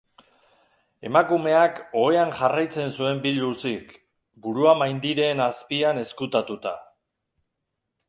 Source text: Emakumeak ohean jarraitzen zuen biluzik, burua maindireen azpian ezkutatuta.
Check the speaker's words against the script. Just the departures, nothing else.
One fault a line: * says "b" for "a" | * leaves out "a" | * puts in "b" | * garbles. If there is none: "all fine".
all fine